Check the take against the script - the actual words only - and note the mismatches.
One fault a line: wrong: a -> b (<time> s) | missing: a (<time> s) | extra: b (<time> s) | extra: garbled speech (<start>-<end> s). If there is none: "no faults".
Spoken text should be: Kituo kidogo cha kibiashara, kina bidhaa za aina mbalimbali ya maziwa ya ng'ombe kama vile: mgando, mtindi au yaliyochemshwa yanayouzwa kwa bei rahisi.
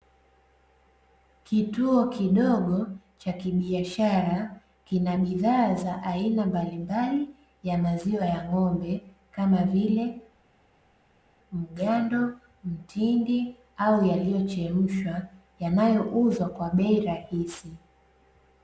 no faults